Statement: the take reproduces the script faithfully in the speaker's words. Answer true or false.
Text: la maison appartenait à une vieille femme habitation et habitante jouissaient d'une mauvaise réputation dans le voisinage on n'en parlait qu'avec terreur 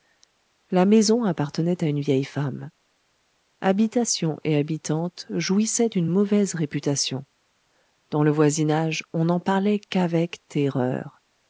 true